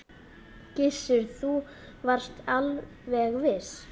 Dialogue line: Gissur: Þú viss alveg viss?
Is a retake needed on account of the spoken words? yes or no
yes